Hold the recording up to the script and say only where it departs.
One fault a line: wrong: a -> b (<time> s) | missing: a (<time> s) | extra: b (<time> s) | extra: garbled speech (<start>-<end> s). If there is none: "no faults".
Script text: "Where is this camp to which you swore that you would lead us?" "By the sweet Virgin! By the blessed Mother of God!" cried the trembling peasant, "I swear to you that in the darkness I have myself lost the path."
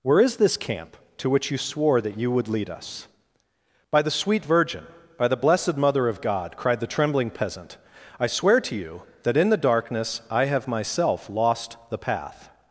no faults